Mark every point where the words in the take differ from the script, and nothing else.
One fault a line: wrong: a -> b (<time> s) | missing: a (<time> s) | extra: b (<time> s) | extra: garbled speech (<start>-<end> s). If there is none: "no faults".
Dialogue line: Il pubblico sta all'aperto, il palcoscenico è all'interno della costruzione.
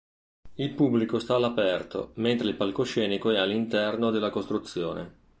extra: mentre (2.1 s)